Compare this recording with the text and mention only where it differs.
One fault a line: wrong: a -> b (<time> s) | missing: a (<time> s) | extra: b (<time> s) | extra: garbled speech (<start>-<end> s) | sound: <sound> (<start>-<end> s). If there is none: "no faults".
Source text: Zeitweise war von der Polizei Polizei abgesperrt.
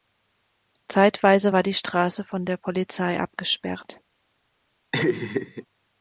extra: die Straße (1.6 s)
missing: Polizei (3.2 s)
sound: laugh (4.9-5.7 s)